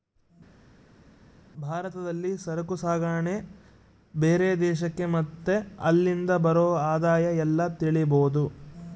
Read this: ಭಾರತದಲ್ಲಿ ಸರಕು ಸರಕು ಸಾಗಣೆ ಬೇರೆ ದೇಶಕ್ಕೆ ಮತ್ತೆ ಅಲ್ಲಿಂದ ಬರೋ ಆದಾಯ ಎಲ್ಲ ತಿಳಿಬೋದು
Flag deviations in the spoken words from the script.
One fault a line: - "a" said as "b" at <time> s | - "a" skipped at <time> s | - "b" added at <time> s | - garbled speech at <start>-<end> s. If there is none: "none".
- "ಸರಕು" skipped at 2.8 s